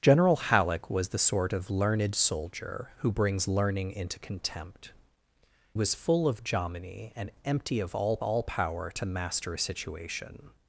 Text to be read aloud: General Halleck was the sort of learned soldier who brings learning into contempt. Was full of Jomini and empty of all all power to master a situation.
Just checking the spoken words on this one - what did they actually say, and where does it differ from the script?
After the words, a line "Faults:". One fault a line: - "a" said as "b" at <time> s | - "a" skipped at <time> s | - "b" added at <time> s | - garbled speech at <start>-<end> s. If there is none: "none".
General Halleck was the sort of learned soldier who brings learning into contempt. Was full of Jomini and empty of all all power to master a situation.
Faults:
none